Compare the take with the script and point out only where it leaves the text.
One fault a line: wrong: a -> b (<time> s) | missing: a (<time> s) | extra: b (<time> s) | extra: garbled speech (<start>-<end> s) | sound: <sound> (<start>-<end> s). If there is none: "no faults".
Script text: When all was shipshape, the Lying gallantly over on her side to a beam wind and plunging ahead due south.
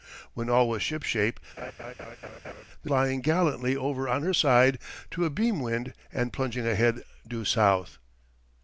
sound: laugh (1.6-2.6 s)